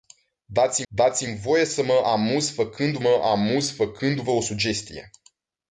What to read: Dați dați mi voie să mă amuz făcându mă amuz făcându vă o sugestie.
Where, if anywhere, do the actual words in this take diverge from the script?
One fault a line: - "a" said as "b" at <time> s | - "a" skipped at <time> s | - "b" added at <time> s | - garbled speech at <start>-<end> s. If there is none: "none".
none